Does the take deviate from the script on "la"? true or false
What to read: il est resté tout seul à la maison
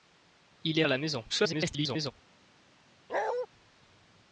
false